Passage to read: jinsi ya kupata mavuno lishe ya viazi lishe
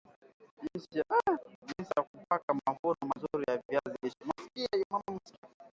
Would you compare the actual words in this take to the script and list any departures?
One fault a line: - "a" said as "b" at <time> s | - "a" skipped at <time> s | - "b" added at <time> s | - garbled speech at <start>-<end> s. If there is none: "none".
- "lishe" said as "mazuri" at 3.1 s